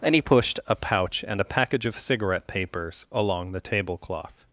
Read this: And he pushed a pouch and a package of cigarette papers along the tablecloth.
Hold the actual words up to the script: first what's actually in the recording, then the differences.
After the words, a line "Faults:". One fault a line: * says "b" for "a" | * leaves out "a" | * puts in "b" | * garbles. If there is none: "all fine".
And he pushed a pouch and a package of cigarette papers along the tablecloth.
Faults:
all fine